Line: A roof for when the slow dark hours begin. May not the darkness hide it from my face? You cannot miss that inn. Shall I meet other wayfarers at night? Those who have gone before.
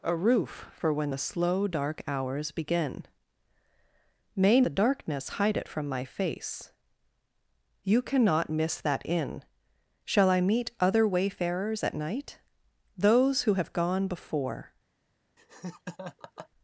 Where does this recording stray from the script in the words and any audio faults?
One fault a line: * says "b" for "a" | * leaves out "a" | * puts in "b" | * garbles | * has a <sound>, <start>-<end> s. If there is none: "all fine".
* leaves out "not"
* has a laugh, 15.4-16.5 s